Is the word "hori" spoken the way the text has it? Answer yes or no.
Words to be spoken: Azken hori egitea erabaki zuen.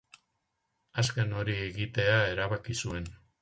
yes